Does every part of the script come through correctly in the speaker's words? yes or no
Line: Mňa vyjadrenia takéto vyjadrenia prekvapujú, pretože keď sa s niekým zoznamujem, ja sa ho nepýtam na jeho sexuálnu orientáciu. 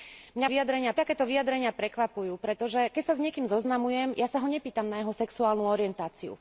yes